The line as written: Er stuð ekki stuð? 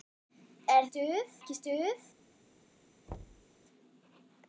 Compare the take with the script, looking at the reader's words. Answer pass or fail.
pass